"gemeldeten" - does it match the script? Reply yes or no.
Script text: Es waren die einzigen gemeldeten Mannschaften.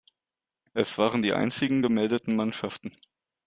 yes